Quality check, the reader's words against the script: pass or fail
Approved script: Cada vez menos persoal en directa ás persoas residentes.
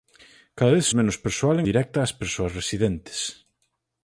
pass